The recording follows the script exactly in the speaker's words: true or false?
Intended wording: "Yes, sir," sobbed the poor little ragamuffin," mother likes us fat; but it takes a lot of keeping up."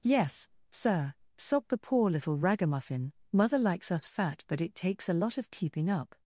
true